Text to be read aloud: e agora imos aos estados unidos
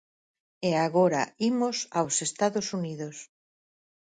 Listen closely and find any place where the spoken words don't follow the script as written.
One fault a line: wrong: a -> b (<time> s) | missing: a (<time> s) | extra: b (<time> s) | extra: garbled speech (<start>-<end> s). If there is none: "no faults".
no faults